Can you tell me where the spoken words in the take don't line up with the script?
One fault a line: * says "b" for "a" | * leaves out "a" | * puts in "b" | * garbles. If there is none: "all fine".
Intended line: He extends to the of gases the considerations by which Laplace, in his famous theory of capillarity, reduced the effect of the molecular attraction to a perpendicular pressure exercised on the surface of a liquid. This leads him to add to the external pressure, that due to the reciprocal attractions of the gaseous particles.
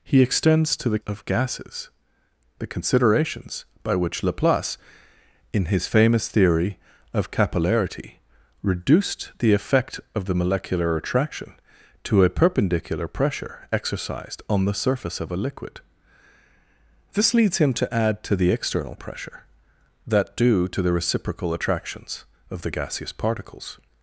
all fine